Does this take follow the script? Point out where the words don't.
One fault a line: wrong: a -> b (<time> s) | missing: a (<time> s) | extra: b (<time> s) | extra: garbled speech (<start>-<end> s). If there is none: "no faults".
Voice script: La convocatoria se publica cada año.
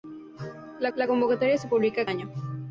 extra: la (0.9 s)
missing: cada (2.1 s)